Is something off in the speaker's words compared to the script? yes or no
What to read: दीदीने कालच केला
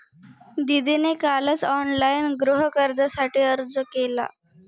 yes